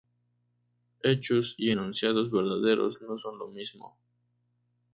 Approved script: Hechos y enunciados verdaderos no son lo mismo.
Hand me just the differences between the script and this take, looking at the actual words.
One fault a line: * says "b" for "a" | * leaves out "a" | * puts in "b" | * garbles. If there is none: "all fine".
all fine